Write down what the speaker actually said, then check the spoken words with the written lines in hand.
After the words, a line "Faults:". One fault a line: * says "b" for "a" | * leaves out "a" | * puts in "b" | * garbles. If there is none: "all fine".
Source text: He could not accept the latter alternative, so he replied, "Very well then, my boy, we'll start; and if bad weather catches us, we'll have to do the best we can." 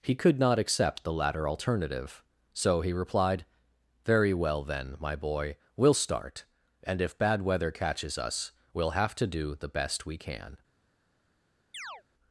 He could not accept the latter alternative, so he replied, "Very well then, my boy, we'll start; and if bad weather catches us, we'll have to do the best we can."
Faults:
all fine